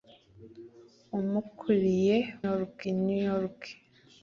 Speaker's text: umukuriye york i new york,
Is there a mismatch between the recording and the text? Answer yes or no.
no